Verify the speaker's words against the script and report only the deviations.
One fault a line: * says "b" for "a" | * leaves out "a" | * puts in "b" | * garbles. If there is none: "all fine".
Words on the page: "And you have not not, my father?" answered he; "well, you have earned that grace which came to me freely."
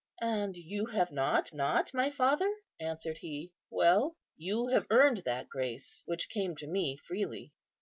all fine